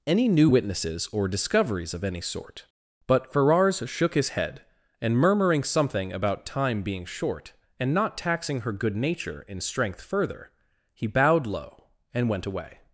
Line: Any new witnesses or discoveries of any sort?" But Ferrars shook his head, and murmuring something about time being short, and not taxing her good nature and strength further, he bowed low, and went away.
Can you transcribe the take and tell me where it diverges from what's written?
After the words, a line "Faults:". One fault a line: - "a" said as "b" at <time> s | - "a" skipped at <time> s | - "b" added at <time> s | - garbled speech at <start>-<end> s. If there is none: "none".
Any new witnesses or discoveries of any sort?" But Ferrars shook his head, and murmuring something about time being short, and not taxing her good nature in strength further, he bowed low, and went away.
Faults:
- "and" said as "in" at 9.5 s